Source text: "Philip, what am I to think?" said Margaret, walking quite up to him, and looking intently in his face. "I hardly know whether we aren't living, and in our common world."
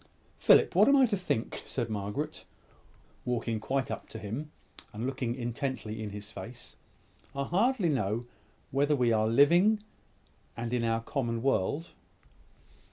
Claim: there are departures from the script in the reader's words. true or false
true